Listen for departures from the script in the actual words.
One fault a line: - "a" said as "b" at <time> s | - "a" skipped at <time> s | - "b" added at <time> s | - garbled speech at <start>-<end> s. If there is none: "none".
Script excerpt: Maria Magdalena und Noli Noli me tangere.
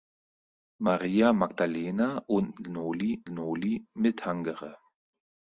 none